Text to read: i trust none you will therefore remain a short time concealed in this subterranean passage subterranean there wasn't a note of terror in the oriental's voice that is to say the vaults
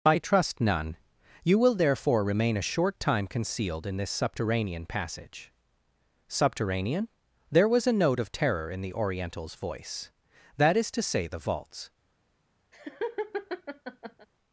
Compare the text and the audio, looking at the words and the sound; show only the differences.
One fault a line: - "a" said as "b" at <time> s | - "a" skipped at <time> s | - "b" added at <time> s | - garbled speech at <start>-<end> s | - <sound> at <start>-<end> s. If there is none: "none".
- "wasn't" said as "was" at 7.7 s
- laugh at 12.7-14.3 s